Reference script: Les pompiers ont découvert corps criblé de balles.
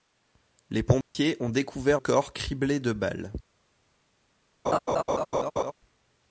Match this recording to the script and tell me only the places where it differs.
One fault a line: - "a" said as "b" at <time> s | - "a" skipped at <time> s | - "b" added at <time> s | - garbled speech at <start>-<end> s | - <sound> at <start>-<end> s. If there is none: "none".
- dropout at 1.0-1.1 s
- laugh at 4.6-5.7 s